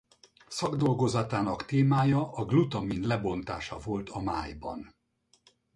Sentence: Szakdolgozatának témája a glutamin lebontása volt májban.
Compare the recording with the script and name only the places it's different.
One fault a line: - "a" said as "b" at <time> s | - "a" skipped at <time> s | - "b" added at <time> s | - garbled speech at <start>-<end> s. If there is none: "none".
- "a" added at 4.1 s